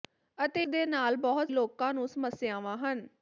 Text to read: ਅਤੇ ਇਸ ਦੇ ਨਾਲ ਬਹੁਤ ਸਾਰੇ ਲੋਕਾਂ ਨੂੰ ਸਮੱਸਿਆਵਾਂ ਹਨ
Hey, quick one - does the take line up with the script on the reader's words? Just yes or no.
no